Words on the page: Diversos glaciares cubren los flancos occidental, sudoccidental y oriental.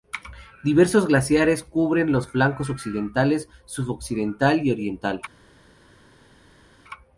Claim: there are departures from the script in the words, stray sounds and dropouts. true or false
false